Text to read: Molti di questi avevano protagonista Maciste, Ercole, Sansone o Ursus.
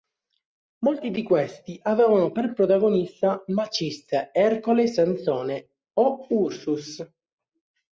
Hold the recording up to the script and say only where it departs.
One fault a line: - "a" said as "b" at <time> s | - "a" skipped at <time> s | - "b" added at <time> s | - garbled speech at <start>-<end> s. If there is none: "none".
- "per" added at 2.3 s